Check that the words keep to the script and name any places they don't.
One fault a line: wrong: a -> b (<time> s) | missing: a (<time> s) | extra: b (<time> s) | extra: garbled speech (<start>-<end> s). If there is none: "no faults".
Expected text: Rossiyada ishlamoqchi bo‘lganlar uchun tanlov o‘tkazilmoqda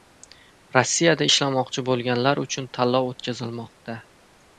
no faults